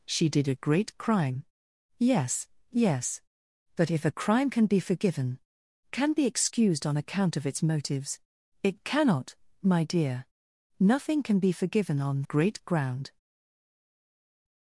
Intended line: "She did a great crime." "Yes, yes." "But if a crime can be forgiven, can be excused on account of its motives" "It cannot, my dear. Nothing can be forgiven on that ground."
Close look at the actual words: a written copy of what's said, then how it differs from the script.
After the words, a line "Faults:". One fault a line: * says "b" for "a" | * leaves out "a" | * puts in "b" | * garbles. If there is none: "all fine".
"She did a great crime." "Yes, yes." "But if a crime can be forgiven, can be excused on account of its motives" "It cannot, my dear. Nothing can be forgiven on great ground."
Faults:
* says "great" for "that"